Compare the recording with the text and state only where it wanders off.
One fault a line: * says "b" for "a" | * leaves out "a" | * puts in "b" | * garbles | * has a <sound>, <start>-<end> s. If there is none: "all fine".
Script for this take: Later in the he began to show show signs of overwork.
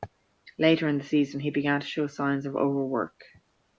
* puts in "season"
* leaves out "show"